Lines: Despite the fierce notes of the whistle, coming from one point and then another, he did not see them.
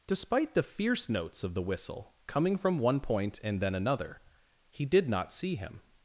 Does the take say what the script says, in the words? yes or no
no